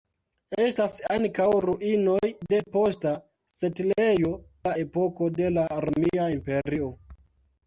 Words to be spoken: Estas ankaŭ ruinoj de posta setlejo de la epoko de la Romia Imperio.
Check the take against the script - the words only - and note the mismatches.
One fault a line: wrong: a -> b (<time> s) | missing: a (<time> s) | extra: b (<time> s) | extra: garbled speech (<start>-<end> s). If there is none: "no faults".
missing: de (4.3 s)